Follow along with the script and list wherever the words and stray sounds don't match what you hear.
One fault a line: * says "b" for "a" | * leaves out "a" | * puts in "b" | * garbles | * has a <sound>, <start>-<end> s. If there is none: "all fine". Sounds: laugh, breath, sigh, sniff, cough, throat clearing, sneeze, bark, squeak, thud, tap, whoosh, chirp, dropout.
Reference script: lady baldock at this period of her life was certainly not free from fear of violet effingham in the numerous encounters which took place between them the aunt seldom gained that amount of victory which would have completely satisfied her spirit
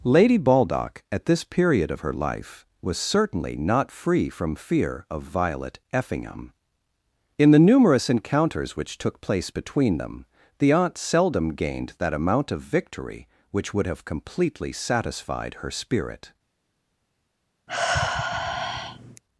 * has a sigh, 17.7-19.2 s